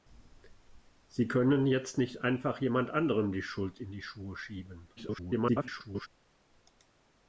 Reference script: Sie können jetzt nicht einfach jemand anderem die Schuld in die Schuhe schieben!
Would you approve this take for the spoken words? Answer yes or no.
no